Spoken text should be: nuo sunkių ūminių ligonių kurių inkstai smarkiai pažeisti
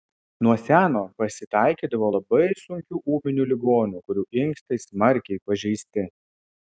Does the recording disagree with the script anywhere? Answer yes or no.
yes